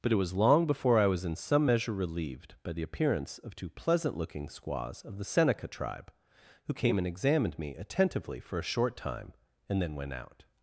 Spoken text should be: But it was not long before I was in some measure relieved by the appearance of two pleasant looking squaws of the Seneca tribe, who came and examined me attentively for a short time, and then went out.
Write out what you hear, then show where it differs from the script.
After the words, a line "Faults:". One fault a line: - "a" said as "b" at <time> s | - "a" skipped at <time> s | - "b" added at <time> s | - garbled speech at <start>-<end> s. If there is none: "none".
But it was long before I was in some measure relieved by the appearance of two pleasant looking squaws of the Seneca tribe, who came and examined me attentively for a short time, and then went out.
Faults:
- "not" skipped at 0.3 s